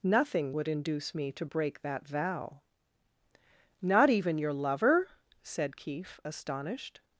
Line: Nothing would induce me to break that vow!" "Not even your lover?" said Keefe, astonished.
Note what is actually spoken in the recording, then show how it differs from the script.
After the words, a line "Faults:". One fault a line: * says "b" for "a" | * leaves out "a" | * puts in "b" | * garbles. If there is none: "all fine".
Nothing would induce me to break that vow!" "Not even your lover?" said Keefe, astonished.
Faults:
all fine